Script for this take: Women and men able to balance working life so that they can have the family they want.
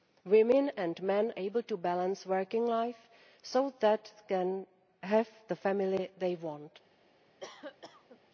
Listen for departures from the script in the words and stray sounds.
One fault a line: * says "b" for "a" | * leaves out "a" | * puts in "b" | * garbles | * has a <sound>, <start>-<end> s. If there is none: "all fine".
* has a cough, 7.4-8.2 s